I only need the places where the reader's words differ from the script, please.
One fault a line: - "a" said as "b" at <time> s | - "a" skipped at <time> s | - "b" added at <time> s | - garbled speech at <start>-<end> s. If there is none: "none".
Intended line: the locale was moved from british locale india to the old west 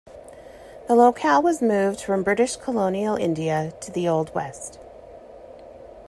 - "locale" said as "colonial" at 2.6 s